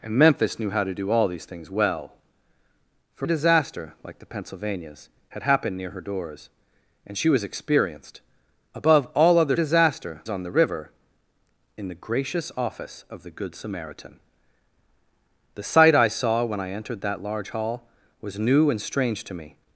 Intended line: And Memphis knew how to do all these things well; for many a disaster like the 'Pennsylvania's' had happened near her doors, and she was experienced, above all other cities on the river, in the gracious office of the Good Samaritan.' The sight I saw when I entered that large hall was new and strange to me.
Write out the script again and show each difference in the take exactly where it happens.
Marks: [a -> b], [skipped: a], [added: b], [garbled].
And Memphis knew how to do all these things well; for [skipped: many] a disaster like the 'Pennsylvania's' had happened near her doors, and she was experienced, above all other [cities -> disaster] on the river, in the gracious office of the Good Samaritan.' The sight I saw when I entered that large hall was new and strange to me.